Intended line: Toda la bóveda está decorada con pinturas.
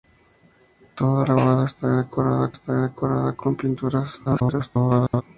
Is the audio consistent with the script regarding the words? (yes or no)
no